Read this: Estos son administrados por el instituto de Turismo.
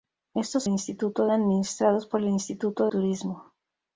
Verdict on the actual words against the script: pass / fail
fail